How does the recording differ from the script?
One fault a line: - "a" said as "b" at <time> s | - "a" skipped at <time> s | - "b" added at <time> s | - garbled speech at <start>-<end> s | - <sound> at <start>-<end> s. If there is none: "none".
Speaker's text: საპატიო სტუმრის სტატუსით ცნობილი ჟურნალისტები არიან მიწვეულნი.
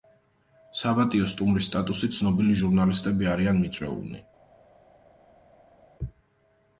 none